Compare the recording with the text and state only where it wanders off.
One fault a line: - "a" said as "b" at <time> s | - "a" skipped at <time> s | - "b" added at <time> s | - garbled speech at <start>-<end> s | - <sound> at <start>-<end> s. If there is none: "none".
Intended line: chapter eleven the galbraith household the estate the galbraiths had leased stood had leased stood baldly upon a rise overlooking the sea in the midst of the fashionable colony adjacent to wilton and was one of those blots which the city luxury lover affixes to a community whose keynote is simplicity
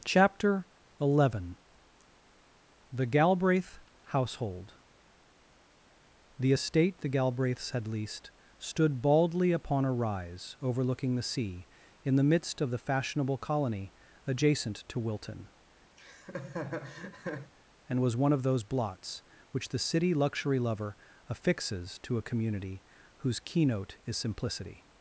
- "had leased stood" skipped at 9.0 s
- laugh at 16.0-17.5 s